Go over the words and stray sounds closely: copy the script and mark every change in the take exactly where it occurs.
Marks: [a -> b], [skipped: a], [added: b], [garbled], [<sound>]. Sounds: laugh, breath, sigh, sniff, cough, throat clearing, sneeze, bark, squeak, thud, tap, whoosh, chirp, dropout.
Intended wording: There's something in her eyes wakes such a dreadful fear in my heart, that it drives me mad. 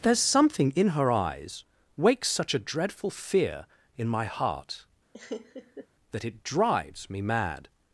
There's something in her eyes wakes such a dreadful fear in my heart, [laugh] that it drives me mad.